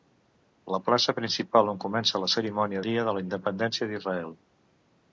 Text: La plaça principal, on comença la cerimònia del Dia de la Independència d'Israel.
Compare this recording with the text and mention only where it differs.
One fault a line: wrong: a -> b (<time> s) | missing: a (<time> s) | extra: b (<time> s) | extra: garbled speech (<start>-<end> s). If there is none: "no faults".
missing: del (2.8 s)